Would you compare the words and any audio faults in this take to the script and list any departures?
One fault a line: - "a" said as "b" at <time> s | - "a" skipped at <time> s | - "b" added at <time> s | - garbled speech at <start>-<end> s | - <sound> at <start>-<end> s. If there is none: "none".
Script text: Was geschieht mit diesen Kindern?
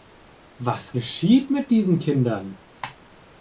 none